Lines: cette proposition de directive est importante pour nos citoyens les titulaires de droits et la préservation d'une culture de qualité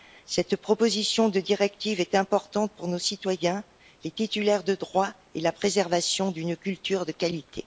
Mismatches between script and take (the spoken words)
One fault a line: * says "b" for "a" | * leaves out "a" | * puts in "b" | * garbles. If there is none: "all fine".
all fine